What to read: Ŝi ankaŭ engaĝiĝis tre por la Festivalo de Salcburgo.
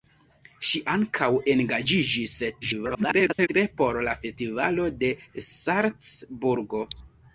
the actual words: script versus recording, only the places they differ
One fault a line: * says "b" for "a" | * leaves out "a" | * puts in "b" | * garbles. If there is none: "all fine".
* garbles